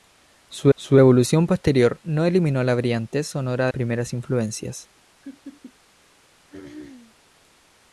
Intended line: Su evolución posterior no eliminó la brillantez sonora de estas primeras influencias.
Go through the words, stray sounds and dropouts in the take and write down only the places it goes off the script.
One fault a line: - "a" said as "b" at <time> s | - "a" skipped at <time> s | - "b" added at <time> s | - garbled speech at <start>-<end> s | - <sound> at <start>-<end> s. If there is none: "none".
- "su" added at 0.7 s
- "de estas" skipped at 3.7 s
- laugh at 5.2-5.7 s
- throat clearing at 6.5-7.2 s